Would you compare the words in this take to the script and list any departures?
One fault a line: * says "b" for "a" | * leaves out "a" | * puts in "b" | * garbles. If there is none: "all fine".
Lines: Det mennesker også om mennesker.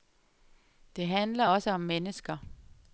* says "handler" for "mennesker"